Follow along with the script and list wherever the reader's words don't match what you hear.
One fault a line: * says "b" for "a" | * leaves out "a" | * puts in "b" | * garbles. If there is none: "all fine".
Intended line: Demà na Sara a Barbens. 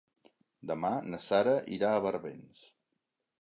* puts in "irà"